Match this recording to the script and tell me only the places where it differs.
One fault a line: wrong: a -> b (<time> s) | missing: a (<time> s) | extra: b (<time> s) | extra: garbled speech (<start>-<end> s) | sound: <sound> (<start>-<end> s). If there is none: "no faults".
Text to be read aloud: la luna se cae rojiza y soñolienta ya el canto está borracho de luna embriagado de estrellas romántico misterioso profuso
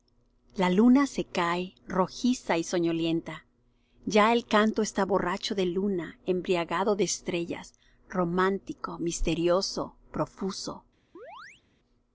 sound: chirp (11.1-11.6 s)